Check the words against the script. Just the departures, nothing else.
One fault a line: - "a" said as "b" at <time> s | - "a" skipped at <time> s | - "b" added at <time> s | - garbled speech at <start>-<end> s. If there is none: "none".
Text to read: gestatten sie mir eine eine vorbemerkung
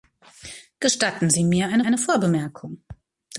none